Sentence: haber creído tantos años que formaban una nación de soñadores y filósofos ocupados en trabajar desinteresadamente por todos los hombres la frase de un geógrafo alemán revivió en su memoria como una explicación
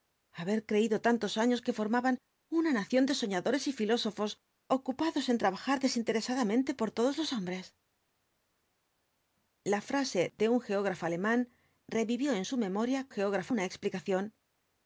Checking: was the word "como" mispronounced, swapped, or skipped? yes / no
yes